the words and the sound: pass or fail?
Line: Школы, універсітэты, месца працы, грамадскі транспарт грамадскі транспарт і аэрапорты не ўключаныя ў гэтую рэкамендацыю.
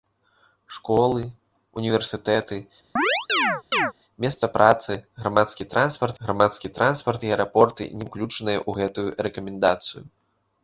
fail